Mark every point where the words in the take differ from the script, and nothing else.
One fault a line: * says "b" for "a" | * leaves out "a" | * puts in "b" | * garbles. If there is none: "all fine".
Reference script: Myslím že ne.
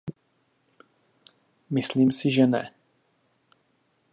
* puts in "si"